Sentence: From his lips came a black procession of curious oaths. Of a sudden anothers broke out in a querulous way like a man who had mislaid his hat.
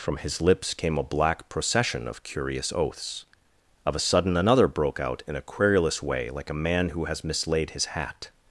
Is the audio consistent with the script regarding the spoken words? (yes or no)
no